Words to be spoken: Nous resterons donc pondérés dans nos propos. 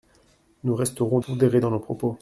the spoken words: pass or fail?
fail